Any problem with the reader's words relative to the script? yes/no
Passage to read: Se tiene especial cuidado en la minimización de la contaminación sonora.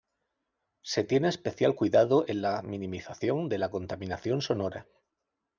no